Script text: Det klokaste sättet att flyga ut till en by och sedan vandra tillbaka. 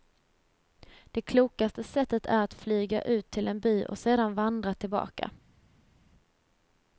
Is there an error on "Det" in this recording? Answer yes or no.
no